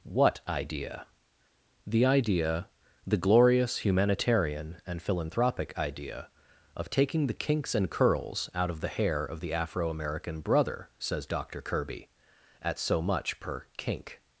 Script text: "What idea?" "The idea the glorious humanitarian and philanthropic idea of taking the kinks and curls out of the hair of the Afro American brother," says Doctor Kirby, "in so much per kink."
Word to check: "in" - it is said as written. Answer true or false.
false